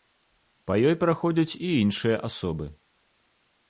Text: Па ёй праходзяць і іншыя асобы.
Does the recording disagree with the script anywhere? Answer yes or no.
no